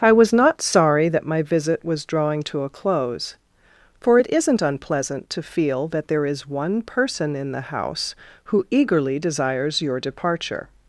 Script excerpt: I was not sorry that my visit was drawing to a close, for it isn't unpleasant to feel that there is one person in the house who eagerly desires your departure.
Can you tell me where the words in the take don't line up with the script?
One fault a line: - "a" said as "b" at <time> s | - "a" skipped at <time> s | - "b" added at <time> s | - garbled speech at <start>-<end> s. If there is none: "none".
none